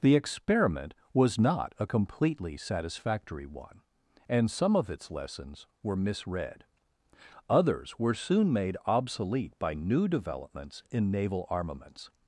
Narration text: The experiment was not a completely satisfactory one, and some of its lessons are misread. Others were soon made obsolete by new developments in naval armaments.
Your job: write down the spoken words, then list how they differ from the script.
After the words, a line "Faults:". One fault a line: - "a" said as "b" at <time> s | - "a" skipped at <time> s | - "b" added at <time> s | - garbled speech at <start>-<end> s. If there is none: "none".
The experiment was not a completely satisfactory one, and some of its lessons were misread. Others were soon made obsolete by new developments in naval armaments.
Faults:
- "are" said as "were" at 5.8 s